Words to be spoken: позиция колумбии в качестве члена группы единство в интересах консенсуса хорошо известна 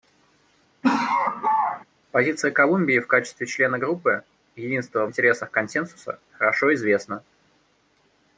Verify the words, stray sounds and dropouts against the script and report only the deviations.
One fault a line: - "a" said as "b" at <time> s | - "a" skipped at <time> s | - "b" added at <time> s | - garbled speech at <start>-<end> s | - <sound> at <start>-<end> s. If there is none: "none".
- laugh at 0.8-1.8 s
- "в" skipped at 5.1 s